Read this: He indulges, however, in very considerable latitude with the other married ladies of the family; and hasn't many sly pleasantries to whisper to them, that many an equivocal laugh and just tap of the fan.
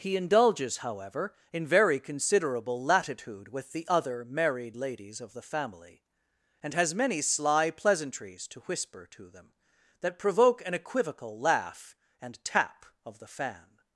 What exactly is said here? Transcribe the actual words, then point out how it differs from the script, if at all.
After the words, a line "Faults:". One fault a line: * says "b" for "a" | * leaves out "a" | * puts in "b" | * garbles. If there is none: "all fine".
He indulges, however, in very considerable latitude with the other married ladies of the family; and has many sly pleasantries to whisper to them, that provoke an equivocal laugh and tap of the fan.
Faults:
* says "has" for "hasn't"
* says "provoke" for "many"
* leaves out "just"